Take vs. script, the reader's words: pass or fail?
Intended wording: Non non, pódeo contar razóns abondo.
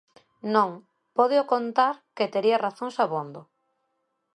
fail